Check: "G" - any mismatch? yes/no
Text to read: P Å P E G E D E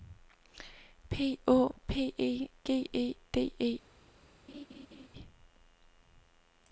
no